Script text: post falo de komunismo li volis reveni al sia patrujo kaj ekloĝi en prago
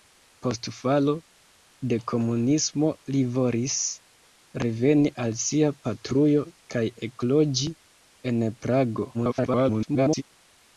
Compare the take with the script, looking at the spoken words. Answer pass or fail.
fail